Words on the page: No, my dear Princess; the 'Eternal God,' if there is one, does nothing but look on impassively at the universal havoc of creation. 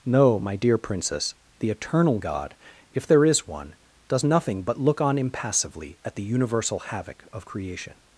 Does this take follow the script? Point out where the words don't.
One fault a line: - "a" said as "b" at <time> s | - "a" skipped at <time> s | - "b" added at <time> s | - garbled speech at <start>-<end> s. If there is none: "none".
none